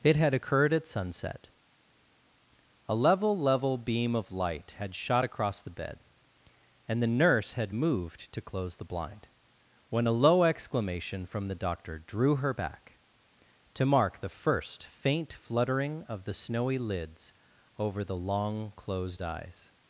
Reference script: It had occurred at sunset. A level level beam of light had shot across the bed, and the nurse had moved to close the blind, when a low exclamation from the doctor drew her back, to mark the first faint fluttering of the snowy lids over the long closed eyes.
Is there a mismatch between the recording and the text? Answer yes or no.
no